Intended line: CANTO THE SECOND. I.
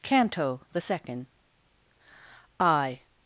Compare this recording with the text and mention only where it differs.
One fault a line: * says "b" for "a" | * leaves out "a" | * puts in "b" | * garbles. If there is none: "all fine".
all fine